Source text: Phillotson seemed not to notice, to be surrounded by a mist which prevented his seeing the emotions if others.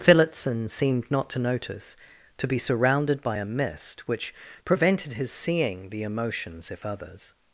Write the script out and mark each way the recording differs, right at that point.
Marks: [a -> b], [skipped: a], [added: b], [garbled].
Phillotson seemed not to notice, to be surrounded by a mist which prevented his seeing the emotions if others.